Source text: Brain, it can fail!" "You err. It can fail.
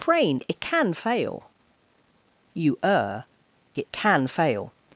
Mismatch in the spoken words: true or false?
false